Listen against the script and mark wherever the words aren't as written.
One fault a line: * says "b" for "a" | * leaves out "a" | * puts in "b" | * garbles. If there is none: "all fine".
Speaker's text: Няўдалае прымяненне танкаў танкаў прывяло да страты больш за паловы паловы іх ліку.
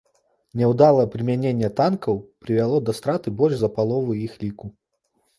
* leaves out "танкаў"
* leaves out "паловы"